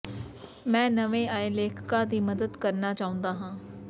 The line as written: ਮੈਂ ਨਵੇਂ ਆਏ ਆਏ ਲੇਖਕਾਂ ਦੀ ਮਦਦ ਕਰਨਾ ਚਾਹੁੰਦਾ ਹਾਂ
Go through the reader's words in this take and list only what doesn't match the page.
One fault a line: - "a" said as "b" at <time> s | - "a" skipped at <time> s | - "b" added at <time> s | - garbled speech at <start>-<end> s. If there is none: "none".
- "ਆਏ" skipped at 1.5 s